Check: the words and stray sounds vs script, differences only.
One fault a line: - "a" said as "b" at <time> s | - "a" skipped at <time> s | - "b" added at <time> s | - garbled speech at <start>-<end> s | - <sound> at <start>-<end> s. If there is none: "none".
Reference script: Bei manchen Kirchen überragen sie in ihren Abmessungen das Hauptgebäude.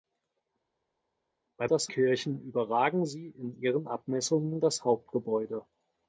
- "manchen" said as "das" at 1.7 s